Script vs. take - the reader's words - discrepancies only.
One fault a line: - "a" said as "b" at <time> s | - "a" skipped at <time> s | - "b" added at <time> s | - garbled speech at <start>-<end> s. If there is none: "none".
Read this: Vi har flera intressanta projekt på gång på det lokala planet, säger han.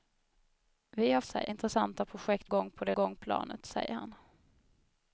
- "flera" said as "säger" at 1.2 s
- "på" skipped at 2.5 s
- "lokala" said as "gång" at 2.9 s